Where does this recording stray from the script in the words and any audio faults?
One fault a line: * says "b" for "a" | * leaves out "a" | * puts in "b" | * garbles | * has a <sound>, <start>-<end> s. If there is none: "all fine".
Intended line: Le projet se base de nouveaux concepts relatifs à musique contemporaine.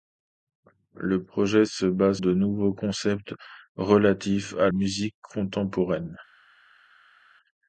all fine